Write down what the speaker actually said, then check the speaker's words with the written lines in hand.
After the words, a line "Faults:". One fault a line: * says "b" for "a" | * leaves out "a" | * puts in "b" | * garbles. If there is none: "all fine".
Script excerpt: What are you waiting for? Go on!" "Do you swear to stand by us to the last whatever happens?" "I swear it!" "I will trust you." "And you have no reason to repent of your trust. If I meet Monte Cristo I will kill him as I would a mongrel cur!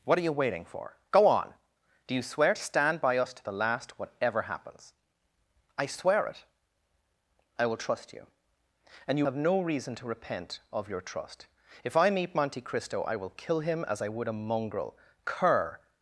What are you waiting for? Go on!" "Do you swear to stand by us to the last whatever happens?" "I swear it!" "I will trust you." "And you have no reason to repent of your trust. If I meet Monte Cristo I will kill him as I would a mongrel cur!
Faults:
all fine